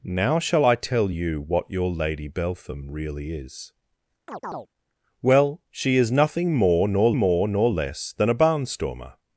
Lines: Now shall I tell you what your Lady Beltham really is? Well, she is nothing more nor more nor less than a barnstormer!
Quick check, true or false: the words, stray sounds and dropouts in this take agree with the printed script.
false